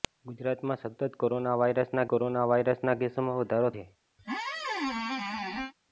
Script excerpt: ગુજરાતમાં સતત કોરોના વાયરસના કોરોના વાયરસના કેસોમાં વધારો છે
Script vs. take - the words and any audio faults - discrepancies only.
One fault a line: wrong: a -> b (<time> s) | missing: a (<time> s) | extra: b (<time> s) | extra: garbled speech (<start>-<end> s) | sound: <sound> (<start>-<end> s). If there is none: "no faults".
sound: squeak (4.2-5.7 s)